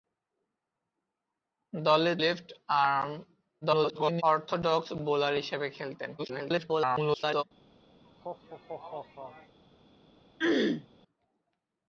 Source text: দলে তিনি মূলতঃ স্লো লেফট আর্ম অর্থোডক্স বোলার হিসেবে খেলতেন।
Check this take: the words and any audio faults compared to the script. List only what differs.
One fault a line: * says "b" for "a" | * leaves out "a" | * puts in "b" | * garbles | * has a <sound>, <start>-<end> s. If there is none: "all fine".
* leaves out "তিনি মূলতঃ স্লো"
* garbles
* garbles
* has a laugh, 8.0-9.6 s
* has a throat clearing, 10.4-10.9 s